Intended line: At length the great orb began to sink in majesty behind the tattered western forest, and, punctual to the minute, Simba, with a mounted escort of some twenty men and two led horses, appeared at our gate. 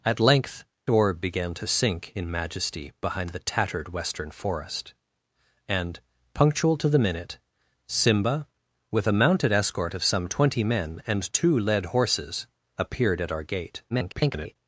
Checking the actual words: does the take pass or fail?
fail